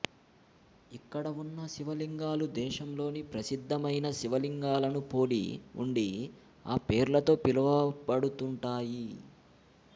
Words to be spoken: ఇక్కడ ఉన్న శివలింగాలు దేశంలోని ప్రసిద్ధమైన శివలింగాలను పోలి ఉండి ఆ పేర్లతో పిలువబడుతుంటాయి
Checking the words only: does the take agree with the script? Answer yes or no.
yes